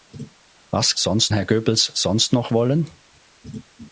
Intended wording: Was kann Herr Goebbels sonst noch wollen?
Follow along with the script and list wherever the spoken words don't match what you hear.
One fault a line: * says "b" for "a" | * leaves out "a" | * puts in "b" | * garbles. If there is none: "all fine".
* says "sonst" for "kann"